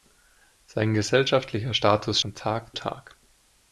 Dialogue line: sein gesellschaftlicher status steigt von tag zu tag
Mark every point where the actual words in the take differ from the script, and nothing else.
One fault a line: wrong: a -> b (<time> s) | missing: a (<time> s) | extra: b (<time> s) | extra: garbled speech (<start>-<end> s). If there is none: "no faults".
missing: steigt (2.2 s)
missing: zu (2.8 s)